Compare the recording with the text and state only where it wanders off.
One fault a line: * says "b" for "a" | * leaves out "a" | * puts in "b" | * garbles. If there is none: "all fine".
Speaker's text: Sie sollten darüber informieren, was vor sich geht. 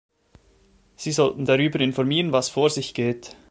all fine